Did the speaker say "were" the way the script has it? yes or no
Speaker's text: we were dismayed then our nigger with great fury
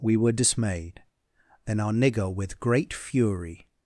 yes